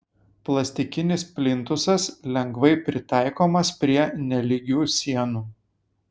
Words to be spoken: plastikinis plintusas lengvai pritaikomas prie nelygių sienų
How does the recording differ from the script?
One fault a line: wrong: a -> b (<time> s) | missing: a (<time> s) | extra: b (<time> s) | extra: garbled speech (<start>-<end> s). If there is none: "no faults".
no faults